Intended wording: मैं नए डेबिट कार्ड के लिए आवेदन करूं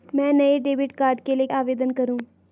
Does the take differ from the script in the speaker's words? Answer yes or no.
no